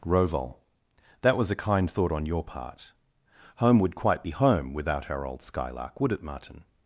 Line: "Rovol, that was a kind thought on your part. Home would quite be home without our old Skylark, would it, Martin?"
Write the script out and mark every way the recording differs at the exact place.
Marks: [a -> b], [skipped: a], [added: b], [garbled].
"Rovol, that was a kind thought on your part. Home would quite be home without our old Skylark, would it, Martin?"